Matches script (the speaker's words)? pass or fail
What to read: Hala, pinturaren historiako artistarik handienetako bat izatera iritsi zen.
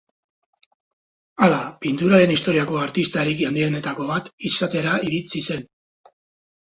pass